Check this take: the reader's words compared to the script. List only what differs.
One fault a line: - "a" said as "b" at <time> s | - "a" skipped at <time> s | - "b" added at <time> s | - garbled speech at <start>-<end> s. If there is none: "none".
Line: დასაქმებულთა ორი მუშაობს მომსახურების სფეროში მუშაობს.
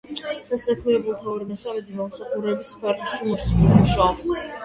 - "მუშაობს" said as "მესამედი" at 1.5 s